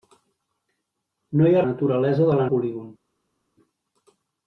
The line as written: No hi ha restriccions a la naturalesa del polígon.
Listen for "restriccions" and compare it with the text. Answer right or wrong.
wrong